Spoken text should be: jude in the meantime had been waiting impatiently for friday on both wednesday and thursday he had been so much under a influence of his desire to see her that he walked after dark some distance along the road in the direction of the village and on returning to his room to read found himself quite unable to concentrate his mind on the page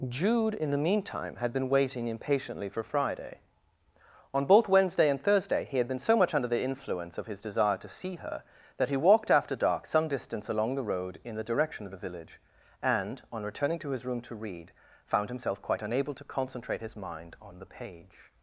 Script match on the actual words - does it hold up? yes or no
no